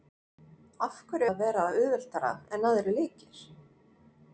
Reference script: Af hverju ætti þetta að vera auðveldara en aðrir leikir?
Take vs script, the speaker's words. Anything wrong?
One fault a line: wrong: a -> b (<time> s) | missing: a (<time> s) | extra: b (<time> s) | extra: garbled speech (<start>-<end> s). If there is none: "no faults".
missing: ætti þetta (1.3 s)